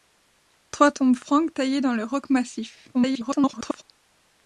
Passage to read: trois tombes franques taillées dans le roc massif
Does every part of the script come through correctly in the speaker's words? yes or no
no